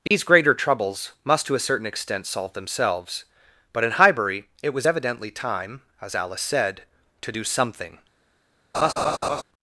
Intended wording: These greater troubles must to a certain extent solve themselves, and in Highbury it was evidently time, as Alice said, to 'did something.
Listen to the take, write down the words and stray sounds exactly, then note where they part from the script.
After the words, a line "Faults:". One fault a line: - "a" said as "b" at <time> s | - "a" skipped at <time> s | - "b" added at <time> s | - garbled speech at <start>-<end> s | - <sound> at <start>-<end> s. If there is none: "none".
These greater troubles must to a certain extent solve themselves, but in Highbury it was evidently time, as Alice said, to 'do something.
Faults:
- dropout at 0.1-0.1 s
- "and" said as "but" at 3.7 s
- "did" said as "do" at 7.3 s
- laugh at 8.7-9.4 s